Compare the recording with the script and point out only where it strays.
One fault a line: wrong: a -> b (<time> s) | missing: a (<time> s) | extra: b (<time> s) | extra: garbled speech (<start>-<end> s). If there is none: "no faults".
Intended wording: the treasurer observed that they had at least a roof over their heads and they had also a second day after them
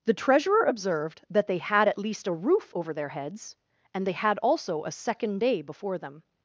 wrong: after -> before (5.6 s)